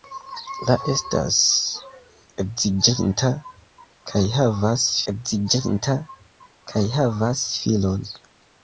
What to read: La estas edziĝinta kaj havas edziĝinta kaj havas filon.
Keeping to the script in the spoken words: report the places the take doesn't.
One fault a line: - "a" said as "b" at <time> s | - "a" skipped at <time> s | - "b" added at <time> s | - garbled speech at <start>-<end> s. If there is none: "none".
none